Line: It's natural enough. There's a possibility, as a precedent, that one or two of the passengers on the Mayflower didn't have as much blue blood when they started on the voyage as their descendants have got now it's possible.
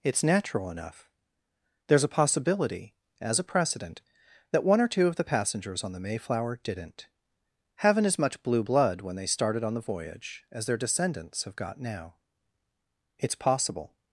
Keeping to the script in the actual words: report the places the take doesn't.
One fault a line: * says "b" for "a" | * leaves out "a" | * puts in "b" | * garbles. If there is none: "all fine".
* says "haven't" for "have"